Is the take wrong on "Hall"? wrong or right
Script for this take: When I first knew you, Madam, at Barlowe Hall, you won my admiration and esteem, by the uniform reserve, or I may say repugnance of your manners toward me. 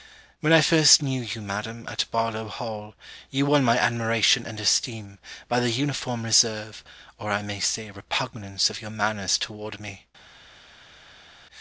right